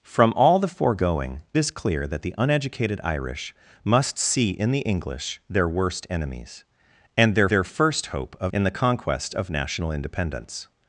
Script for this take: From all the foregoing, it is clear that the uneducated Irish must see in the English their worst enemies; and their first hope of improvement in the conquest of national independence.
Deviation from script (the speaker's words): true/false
true